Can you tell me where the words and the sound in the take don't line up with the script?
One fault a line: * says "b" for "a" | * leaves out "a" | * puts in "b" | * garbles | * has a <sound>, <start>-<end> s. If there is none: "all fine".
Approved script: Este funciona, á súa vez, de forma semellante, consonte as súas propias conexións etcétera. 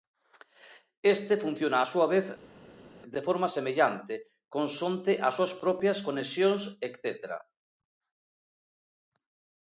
all fine